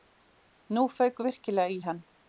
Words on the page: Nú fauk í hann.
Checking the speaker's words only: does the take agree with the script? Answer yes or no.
no